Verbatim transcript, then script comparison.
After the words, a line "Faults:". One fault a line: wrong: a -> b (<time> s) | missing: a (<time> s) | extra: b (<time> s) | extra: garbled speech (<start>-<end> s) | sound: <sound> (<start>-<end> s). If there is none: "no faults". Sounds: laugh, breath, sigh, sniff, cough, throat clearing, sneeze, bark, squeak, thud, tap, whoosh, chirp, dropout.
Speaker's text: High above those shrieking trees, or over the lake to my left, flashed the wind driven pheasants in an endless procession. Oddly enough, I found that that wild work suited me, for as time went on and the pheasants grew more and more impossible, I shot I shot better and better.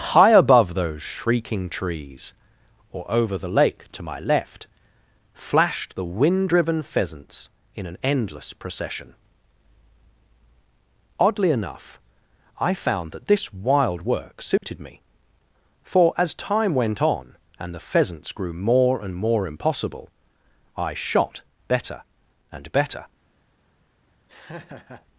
High above those shrieking trees, or over the lake to my left, flashed the wind driven pheasants in an endless procession. Oddly enough, I found that this wild work suited me, for as time went on and the pheasants grew more and more impossible, I shot better and better.
Faults:
wrong: that -> this (13.3 s)
sound: dropout (14.6-14.6 s)
missing: I shot (21.4 s)
sound: laugh (24.3-25.1 s)